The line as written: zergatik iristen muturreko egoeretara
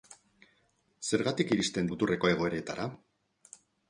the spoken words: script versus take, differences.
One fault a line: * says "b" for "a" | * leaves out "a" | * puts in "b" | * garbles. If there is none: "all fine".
all fine